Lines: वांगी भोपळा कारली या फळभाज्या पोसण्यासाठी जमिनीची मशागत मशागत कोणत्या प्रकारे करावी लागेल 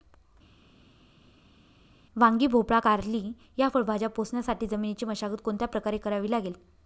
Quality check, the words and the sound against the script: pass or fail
fail